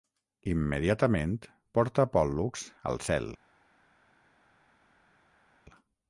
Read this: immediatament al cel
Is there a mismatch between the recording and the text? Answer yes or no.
yes